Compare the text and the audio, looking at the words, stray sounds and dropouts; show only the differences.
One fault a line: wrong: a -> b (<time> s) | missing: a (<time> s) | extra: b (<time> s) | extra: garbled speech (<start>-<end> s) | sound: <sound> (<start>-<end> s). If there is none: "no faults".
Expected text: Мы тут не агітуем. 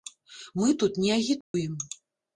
sound: dropout (1.4-1.5 s)